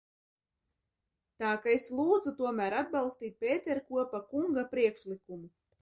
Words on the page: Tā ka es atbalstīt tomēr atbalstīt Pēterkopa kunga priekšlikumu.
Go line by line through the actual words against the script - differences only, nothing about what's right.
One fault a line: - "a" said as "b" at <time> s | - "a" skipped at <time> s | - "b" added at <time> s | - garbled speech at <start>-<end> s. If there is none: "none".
- "atbalstīt" said as "lūdzu" at 2.0 s